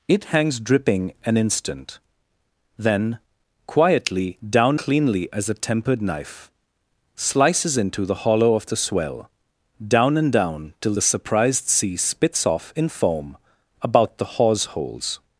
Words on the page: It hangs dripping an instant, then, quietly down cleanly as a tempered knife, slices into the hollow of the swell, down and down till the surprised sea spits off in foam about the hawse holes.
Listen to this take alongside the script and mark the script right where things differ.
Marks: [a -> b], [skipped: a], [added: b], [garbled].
It hangs dripping an instant, then, quietly down cleanly as a tempered knife, slices into the hollow of the swell, down and down till the surprised sea spits off in foam about the hawse holes.